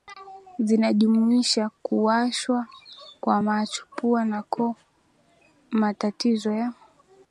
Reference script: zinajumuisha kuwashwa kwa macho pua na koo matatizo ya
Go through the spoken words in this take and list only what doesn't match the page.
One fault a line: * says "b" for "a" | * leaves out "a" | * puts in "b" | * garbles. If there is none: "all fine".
all fine